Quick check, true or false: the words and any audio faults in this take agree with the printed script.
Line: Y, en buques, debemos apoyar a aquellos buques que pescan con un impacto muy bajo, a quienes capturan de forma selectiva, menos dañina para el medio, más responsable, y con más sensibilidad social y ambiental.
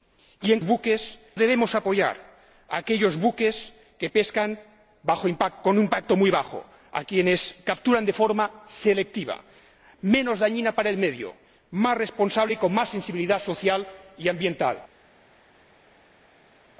true